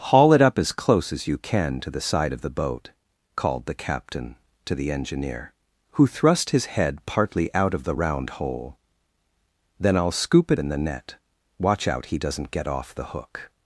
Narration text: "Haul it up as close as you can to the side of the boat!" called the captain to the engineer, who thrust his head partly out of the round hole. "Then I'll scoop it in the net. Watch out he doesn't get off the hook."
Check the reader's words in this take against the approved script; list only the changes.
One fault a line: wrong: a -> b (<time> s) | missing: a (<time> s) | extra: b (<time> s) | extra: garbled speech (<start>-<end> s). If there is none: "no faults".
no faults